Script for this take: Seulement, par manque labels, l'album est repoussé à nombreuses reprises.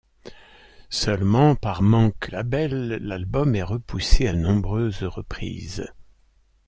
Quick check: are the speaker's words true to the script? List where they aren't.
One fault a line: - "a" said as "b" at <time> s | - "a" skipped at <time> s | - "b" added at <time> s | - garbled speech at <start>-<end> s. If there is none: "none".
none